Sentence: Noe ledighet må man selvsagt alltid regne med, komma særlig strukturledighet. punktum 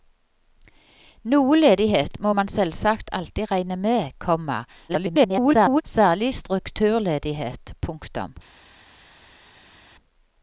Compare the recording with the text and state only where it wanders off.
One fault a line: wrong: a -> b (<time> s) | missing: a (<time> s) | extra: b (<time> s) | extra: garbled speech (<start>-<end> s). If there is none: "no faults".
extra: garbled speech (4.9-5.8 s)